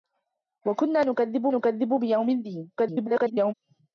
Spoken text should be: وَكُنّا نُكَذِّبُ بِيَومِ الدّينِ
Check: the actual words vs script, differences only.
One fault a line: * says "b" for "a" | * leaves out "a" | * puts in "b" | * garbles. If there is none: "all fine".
* puts in "نُكَذِّبُ"
* garbles